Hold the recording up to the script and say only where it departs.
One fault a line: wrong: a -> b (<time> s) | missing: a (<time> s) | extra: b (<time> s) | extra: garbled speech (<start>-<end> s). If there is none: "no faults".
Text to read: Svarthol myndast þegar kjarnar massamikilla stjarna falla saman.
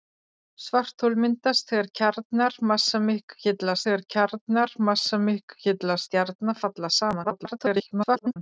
extra: þegar kjarnar massamikilla (3.9 s)
extra: garbled speech (7.2-8.4 s)